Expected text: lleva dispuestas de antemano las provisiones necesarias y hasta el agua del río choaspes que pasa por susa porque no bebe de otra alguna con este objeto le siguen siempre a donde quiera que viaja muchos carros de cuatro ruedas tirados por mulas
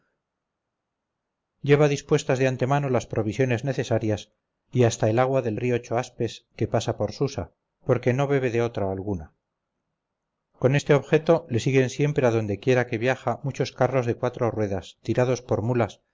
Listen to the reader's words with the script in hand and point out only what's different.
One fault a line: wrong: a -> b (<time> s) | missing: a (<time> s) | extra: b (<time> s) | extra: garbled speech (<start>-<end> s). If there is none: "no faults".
no faults